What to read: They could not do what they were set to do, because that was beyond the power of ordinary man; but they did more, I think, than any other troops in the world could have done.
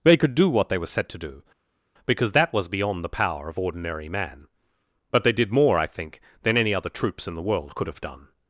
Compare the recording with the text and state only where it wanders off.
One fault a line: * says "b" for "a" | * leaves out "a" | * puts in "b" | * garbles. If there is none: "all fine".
* leaves out "not"